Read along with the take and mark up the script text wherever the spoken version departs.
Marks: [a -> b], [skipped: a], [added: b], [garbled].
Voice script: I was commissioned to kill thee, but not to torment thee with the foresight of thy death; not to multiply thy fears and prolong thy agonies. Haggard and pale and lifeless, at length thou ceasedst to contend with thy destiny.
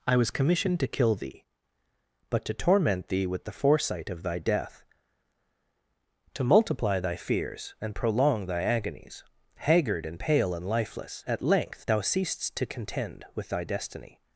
I was commissioned to kill thee, but [skipped: not] to torment thee with the foresight of thy death; [skipped: not] to multiply thy fears and prolong thy agonies. Haggard and pale and lifeless, at length thou ceasedst to contend with thy destiny.